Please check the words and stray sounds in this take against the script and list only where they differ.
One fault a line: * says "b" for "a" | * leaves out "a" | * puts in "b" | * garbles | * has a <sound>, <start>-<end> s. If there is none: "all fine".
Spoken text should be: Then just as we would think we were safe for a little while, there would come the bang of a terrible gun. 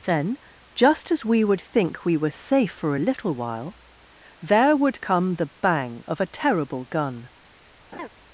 * has a laugh, 7.9-8.1 s